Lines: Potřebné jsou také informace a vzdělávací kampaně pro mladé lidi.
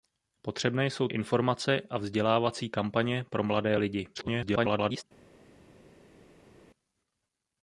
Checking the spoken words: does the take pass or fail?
fail